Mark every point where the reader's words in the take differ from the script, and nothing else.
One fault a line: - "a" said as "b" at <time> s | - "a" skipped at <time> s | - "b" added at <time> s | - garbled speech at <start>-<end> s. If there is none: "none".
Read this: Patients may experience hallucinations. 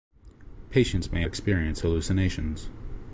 none